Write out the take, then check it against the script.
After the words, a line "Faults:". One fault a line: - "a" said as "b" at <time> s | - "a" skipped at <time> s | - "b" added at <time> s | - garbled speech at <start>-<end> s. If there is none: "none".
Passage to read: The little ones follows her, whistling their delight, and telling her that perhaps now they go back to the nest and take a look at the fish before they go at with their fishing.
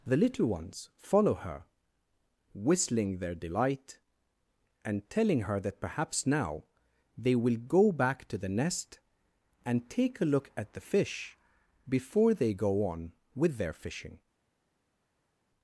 The little ones follow her, whistling their delight, and telling her that perhaps now they will go back to the nest and take a look at the fish before they go on with their fishing.
Faults:
- "follows" said as "follow" at 1.0 s
- "will" added at 7.3 s
- "at" said as "on" at 12.9 s